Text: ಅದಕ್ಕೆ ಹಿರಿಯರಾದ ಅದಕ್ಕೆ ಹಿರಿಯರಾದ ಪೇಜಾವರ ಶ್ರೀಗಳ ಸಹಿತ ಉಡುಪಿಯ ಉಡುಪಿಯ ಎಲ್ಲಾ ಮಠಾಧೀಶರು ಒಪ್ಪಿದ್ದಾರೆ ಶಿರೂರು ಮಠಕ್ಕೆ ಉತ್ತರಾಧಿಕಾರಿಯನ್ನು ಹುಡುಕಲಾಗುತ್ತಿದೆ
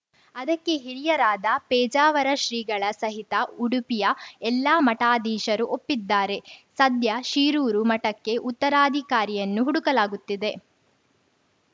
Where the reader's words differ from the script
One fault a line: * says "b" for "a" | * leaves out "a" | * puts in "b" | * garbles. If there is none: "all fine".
* leaves out "ಅದಕ್ಕೆ ಹಿರಿಯರಾದ"
* leaves out "ಉಡುಪಿಯ"
* puts in "ಸದ್ಯ"